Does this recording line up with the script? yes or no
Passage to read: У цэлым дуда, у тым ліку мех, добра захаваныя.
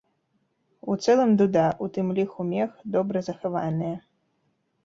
yes